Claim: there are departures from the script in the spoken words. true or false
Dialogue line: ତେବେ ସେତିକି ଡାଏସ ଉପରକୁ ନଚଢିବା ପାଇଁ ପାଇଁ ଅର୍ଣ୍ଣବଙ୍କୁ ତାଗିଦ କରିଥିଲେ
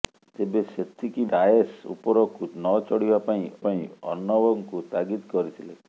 false